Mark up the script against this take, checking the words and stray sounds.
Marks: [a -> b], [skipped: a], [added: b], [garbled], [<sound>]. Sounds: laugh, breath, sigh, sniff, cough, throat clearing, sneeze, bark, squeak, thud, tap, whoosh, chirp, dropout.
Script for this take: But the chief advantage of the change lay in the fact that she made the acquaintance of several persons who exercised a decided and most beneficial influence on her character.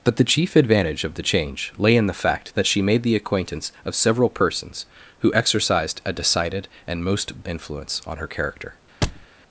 But the chief advantage of the change lay in the fact that she made the acquaintance of several persons who exercised a decided and most [skipped: beneficial] influence on her character. [thud]